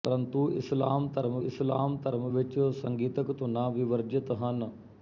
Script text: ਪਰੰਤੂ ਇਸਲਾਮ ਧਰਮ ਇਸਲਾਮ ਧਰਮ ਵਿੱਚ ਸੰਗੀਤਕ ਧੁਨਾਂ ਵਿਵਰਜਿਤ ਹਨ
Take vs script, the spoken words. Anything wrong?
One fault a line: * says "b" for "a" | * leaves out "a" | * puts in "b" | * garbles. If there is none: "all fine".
all fine